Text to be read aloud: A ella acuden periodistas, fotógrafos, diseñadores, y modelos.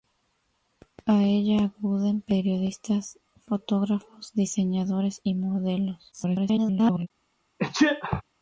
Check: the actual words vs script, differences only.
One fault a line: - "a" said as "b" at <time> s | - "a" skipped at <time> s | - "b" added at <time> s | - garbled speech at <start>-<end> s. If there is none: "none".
- garbled speech at 6.1-7.1 s